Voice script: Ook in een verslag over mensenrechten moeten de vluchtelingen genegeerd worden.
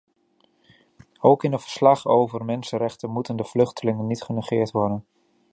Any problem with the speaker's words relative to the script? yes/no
yes